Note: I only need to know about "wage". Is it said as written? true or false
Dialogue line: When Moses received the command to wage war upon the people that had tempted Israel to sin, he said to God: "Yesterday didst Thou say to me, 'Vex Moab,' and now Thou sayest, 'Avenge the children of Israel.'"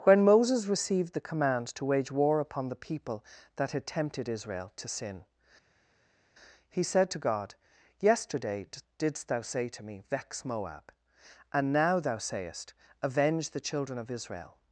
true